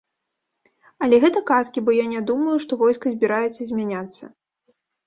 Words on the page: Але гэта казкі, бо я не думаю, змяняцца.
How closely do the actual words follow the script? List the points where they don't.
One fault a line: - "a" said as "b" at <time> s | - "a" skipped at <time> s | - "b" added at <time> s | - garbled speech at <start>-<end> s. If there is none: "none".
- "што войска збіраецца" added at 2.7 s